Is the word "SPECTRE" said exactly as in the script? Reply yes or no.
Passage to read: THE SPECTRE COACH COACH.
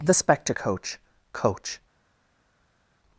yes